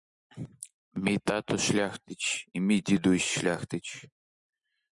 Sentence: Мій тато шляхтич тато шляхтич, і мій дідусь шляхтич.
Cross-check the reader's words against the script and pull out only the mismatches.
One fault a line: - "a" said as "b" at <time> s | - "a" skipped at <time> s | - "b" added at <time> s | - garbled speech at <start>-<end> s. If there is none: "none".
- "тато шляхтич" skipped at 2.5 s